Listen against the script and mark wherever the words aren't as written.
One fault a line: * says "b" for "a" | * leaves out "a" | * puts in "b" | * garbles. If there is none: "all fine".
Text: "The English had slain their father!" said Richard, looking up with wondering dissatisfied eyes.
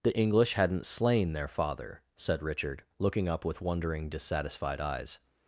* says "hadn't" for "had"